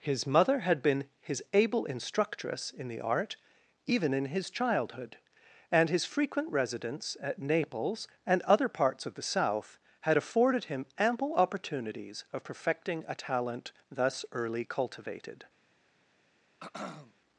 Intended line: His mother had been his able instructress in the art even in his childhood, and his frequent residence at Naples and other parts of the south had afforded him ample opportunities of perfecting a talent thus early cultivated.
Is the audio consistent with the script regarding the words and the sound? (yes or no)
no